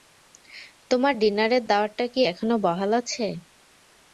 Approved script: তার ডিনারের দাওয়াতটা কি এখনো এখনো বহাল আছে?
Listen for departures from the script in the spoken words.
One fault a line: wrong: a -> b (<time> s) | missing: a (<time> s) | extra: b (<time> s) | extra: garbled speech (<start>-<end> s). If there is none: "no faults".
wrong: তার -> তোমার (0.9 s)
missing: এখনো (2.5 s)